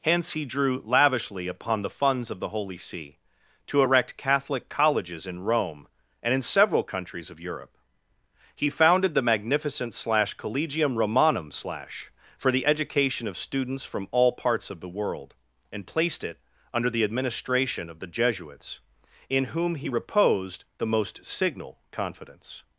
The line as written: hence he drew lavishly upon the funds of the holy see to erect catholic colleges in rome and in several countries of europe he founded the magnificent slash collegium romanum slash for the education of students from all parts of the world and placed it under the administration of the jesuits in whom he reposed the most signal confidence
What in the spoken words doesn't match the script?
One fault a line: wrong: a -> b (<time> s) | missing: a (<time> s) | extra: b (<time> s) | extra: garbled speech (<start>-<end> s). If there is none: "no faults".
no faults